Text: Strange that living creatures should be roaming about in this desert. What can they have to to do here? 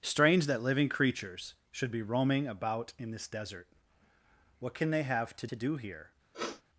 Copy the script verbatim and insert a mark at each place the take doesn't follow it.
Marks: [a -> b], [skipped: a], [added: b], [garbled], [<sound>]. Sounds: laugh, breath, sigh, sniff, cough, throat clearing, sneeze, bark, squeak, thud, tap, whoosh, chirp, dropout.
Strange that living creatures should be roaming about in this desert. What can they have to to do here? [sniff]